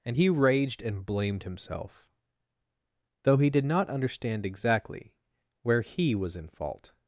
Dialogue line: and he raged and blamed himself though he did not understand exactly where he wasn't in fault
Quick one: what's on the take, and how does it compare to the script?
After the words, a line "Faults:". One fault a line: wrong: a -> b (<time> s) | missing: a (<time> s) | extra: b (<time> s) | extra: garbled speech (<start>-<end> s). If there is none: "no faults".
and he raged and blamed himself though he did not understand exactly where he was in fault
Faults:
wrong: wasn't -> was (6.1 s)